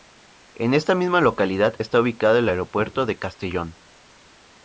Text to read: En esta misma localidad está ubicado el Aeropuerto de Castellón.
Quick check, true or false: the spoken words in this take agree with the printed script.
true